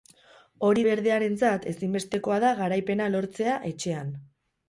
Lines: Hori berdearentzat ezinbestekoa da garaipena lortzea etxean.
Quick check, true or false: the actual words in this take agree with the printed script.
true